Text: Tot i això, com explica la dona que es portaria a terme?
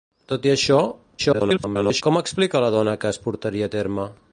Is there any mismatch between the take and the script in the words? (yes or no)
yes